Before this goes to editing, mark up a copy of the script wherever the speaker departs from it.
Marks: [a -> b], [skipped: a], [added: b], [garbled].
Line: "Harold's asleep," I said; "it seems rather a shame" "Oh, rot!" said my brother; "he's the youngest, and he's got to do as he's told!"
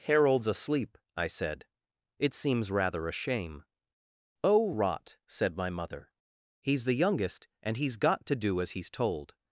"Harold's asleep," I said; "it seems rather a shame" "Oh, rot!" said my [brother; -> mother] "he's the youngest, and he's got to do as he's told!"